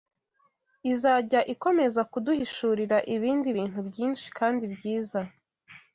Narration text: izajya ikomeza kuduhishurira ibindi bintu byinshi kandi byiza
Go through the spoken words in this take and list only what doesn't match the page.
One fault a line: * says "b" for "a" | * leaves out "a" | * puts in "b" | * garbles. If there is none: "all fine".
all fine